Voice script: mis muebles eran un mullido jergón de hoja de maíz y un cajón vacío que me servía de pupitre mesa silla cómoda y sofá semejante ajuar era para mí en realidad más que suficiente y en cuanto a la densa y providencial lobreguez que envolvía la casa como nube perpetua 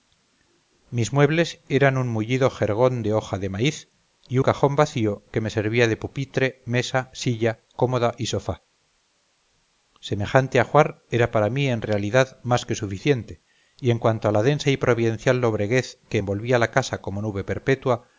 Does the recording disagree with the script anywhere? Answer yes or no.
yes